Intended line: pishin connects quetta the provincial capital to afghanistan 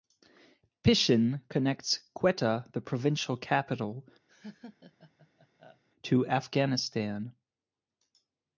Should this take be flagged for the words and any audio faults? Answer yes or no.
yes